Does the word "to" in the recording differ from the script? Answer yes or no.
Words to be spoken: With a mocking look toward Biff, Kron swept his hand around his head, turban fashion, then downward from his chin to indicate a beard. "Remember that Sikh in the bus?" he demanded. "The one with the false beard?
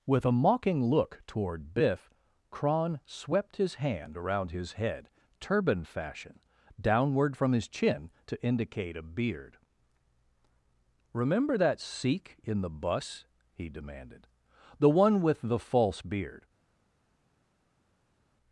no